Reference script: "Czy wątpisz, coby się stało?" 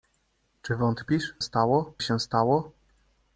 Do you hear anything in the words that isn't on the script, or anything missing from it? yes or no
yes